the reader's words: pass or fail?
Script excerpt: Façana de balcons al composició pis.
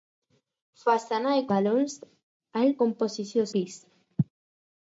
pass